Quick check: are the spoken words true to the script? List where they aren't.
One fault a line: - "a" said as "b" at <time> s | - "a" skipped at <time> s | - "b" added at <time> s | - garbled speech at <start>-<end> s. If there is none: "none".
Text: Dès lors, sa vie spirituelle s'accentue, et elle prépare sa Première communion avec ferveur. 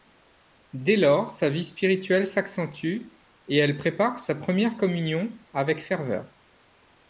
none